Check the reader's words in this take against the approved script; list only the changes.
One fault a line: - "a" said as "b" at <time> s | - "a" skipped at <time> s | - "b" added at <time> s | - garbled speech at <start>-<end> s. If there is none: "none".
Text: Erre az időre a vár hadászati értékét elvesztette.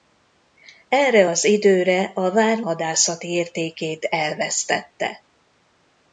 none